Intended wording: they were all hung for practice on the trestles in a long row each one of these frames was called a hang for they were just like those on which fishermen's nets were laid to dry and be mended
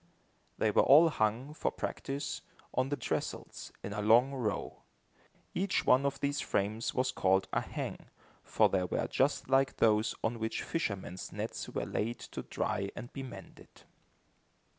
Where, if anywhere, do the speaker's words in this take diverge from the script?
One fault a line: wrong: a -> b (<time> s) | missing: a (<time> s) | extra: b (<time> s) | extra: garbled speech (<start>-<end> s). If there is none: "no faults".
no faults